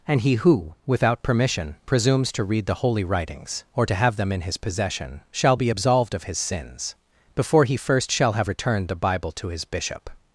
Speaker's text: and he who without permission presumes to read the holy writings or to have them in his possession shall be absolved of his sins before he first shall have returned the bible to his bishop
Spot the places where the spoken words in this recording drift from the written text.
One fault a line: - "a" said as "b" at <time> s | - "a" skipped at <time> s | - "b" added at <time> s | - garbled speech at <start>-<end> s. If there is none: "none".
none